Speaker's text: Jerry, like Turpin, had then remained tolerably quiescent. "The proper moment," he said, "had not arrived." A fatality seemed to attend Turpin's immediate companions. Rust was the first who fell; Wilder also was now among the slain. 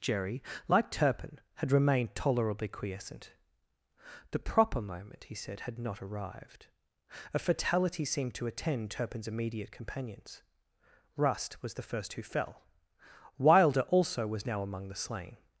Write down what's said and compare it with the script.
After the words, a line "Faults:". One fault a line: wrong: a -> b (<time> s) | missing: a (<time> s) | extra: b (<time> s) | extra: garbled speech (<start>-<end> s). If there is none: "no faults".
Jerry, like Turpin, had remained tolerably quiescent. "The proper moment," he said, "had not arrived." A fatality seemed to attend Turpin's immediate companions. Rust was the first who fell; Wilder also was now among the slain.
Faults:
missing: then (1.7 s)